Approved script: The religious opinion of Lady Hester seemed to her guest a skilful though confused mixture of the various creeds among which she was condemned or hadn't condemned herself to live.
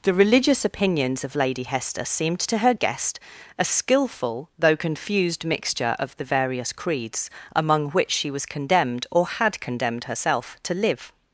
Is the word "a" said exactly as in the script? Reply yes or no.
yes